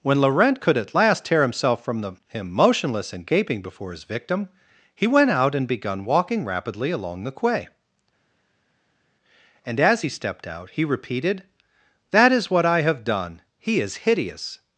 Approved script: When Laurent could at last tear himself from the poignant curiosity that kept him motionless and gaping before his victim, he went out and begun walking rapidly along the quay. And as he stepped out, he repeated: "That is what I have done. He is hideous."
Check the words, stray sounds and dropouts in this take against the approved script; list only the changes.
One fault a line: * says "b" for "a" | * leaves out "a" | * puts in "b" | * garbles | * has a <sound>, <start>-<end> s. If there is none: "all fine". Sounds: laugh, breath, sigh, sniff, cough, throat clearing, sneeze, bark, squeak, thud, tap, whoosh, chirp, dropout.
* leaves out "poignant curiosity that kept"